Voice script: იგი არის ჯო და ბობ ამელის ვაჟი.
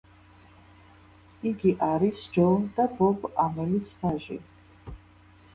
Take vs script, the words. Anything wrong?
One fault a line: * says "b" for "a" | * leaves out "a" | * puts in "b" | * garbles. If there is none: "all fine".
all fine